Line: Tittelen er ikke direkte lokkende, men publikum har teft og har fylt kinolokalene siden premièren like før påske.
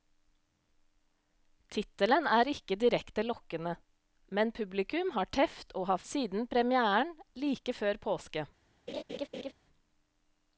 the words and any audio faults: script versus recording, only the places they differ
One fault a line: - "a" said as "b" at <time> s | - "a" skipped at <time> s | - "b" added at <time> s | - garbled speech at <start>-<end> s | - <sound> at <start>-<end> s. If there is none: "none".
- "fylt kinolokalene" skipped at 6.0 s
- laugh at 8.9-9.5 s